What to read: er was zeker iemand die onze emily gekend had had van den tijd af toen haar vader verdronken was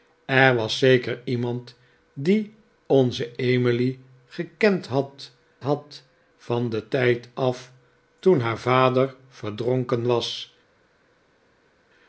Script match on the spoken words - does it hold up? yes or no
yes